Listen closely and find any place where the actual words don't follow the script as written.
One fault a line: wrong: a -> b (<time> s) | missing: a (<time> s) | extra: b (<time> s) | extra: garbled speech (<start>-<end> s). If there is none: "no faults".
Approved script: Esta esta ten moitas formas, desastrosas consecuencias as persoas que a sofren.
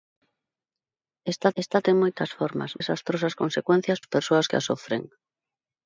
no faults